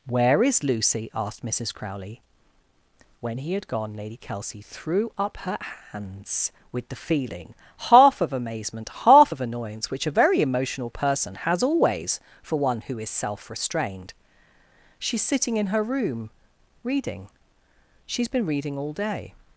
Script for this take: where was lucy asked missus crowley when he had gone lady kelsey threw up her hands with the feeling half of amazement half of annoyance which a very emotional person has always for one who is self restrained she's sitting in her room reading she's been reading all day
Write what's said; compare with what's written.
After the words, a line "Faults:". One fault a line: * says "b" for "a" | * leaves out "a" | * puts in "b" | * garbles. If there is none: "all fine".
where is lucy asked missus crowley when he had gone lady kelsey threw up her hands with the feeling half of amazement half of annoyance which a very emotional person has always for one who is self restrained she's sitting in her room reading she's been reading all day
Faults:
* says "is" for "was"